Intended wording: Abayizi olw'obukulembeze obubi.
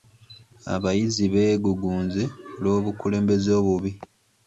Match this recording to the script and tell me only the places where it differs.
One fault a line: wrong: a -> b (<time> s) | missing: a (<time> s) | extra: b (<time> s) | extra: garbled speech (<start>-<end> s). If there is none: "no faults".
extra: beegugunze (1.3 s)